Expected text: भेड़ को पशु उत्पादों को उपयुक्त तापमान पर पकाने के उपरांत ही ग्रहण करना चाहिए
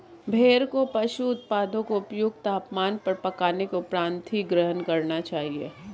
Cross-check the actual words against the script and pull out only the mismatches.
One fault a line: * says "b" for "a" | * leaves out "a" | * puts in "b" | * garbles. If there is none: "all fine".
all fine